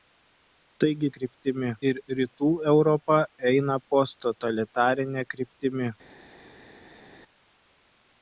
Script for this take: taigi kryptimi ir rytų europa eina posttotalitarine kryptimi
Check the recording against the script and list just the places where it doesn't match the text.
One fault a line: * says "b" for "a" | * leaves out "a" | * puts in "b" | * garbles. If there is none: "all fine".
all fine